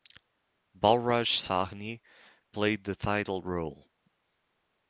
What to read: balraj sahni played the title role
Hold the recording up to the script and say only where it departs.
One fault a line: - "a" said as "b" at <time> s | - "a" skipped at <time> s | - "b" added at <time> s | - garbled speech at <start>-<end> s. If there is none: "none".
none